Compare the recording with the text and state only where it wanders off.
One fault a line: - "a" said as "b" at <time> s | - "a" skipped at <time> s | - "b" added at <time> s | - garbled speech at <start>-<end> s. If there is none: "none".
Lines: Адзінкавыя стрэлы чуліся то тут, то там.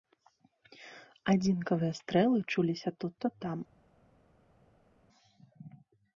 - "тут" skipped at 3.1 s